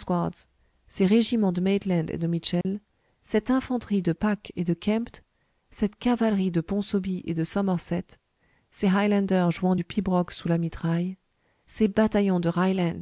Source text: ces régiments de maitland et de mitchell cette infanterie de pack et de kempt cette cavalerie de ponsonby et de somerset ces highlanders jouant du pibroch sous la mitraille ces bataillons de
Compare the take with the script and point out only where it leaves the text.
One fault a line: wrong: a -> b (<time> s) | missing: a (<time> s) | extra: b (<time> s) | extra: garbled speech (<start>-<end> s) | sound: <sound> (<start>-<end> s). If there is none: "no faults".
sound: dropout (2.6-2.7 s)